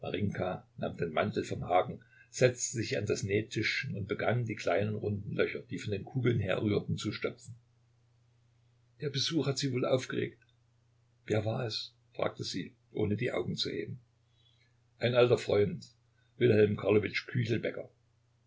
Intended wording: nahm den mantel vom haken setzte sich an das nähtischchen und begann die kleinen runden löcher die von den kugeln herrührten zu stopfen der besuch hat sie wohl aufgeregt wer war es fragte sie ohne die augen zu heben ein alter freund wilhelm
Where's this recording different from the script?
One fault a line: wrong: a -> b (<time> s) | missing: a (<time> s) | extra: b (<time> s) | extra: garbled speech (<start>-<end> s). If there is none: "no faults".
no faults